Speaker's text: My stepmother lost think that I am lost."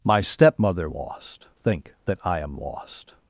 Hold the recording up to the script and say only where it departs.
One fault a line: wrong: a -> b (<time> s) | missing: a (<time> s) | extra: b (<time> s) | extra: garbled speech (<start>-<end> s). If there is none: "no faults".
no faults